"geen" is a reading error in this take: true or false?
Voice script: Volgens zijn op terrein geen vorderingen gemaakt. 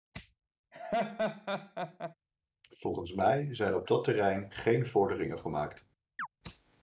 false